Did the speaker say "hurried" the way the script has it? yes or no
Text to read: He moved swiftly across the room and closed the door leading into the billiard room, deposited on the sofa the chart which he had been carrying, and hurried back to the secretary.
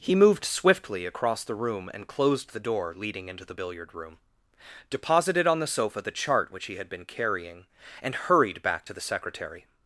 yes